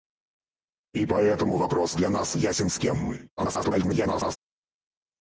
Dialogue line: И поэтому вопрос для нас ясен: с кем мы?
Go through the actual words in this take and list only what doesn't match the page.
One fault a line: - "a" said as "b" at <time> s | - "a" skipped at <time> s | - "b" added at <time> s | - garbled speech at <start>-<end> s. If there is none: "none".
- garbled speech at 3.4-4.4 s